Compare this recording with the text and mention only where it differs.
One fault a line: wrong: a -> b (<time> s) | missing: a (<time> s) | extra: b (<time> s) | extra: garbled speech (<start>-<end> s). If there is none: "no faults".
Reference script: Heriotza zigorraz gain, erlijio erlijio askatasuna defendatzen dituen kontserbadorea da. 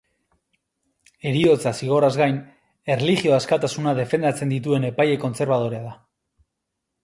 missing: erlijio (3.4 s)
extra: epaile (4.9 s)